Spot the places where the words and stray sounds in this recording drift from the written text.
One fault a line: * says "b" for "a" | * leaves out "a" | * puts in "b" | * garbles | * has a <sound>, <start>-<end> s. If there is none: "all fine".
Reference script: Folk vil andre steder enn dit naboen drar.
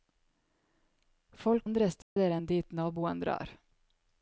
* leaves out "vil"
* has a dropout, 2.0-2.2 s